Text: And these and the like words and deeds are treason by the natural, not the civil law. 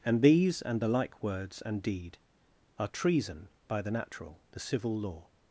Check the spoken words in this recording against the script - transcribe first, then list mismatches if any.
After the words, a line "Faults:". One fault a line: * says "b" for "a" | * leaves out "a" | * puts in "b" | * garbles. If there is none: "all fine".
And these and the like words and deed are treason by the natural, the civil law.
Faults:
* says "deed" for "deeds"
* leaves out "not"